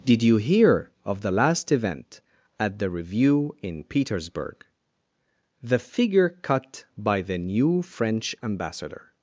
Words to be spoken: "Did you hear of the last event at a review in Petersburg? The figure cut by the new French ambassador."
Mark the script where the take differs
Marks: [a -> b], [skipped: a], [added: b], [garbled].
"Did you hear of the last event at [a -> the] review in Petersburg? The figure cut by the new French ambassador."